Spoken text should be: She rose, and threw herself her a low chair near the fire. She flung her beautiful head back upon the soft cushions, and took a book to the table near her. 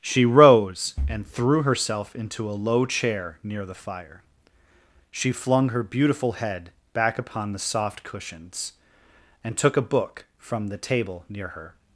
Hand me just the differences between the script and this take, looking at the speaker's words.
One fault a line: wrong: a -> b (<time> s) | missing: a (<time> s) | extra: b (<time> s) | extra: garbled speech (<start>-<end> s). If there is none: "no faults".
wrong: her -> into (2.1 s)
wrong: to -> from (10.4 s)